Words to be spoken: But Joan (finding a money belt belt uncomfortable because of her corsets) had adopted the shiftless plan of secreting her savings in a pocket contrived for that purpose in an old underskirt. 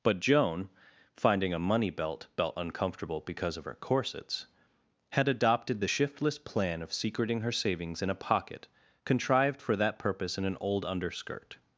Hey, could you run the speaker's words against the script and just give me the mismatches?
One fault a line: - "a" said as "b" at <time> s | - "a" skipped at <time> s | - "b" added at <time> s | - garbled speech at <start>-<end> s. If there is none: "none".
none